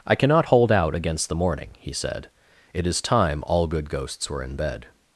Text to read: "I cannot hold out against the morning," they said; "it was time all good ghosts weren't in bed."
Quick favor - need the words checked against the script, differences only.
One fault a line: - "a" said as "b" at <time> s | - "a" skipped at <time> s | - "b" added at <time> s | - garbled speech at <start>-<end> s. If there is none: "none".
- "they" said as "he" at 1.8 s
- "was" said as "is" at 2.8 s
- "weren't" said as "were" at 4.3 s